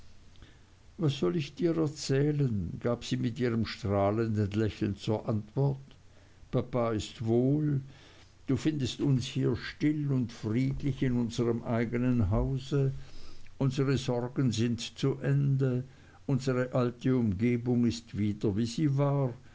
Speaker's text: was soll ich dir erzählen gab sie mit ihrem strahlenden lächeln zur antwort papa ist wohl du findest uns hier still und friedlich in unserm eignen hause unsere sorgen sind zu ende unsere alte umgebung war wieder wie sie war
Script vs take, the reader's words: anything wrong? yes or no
yes